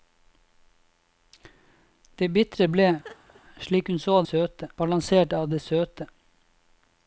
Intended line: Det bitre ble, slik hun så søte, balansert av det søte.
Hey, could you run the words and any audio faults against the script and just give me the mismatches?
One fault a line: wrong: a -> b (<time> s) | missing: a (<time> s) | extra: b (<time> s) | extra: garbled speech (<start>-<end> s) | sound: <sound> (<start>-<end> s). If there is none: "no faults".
sound: laugh (3.0-3.4 s)